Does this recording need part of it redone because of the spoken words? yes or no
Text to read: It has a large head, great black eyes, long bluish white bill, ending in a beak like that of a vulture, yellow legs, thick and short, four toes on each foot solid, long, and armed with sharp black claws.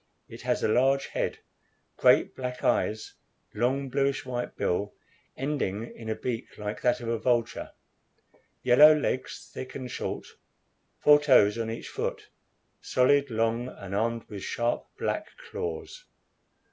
no